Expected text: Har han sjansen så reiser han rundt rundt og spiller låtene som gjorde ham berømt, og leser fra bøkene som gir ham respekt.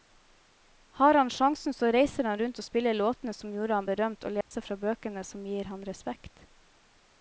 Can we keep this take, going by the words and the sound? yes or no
no